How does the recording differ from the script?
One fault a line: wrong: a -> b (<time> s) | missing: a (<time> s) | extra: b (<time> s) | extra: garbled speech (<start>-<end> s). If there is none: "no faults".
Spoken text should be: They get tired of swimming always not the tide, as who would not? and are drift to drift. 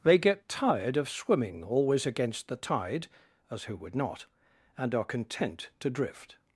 wrong: not -> against (2.0 s)
wrong: drift -> content (5.0 s)